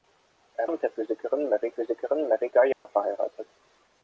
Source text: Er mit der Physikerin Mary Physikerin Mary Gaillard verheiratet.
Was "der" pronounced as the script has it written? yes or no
yes